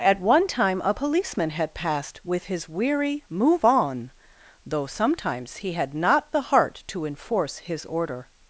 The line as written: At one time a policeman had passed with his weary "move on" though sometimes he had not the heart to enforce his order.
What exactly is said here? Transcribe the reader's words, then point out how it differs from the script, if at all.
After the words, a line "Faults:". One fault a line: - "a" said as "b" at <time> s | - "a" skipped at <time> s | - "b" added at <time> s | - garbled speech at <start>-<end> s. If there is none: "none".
At one time a policeman had passed with his weary "move on" though sometimes he had not the heart to enforce his order.
Faults:
none